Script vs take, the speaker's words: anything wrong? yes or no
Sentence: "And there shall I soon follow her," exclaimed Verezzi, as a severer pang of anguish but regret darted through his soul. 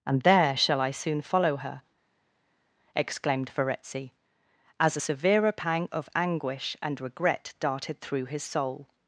yes